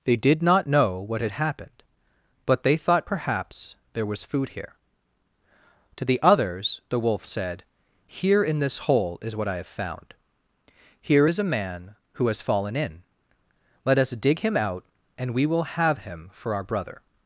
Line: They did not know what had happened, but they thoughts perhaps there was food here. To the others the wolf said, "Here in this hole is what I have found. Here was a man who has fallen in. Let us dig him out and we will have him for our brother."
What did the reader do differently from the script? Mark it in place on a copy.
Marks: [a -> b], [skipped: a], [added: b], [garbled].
They did not know what had happened, but they [thoughts -> thought] perhaps there was food here. To the others the wolf said, "Here in this hole is what I have found. Here [was -> is] a man who has fallen in. Let us dig him out and we will have him for our brother."